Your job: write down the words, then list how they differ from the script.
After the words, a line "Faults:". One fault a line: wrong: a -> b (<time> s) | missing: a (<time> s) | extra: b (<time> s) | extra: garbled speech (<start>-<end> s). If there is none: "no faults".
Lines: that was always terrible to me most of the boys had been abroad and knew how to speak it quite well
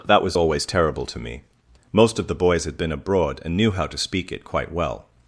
that was always terrible to me most of the boys had been abroad and knew how to speak it quite well
Faults:
no faults